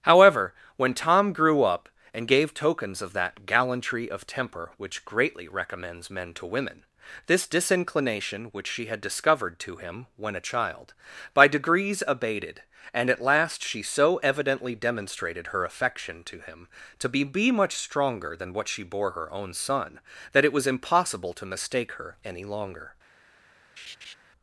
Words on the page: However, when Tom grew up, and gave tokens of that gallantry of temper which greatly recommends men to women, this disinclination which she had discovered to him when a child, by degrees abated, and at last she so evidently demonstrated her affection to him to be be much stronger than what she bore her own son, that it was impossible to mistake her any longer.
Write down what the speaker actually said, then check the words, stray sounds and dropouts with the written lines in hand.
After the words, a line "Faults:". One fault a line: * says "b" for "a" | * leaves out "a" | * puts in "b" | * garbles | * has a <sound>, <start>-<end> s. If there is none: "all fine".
However, when Tom grew up, and gave tokens of that gallantry of temper which greatly recommends men to women, this disinclination which she had discovered to him when a child, by degrees abated, and at last she so evidently demonstrated her affection to him to be be much stronger than what she bore her own son, that it was impossible to mistake her any longer.
Faults:
* has a laugh, 23.8-24.2 s